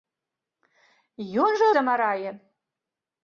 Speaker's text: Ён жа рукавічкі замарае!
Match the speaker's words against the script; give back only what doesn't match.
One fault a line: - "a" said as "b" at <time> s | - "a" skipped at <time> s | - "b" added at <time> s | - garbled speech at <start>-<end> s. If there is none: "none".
- "рукавічкі" skipped at 1.7 s